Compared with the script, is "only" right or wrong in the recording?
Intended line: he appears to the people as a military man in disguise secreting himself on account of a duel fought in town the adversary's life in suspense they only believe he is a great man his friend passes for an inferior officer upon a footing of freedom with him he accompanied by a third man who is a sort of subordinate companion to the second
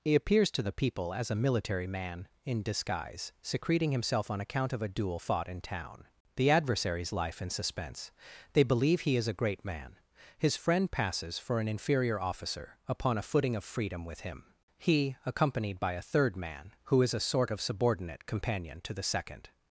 wrong